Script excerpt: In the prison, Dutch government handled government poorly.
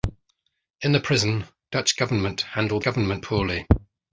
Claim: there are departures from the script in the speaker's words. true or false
false